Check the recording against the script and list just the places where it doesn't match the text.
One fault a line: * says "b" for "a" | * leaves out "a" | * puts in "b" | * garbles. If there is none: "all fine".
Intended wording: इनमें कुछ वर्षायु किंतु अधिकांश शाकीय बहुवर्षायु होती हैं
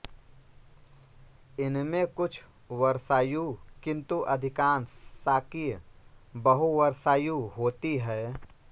all fine